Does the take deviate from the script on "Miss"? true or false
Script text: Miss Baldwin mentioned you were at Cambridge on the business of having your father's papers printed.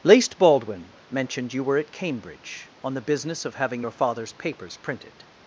true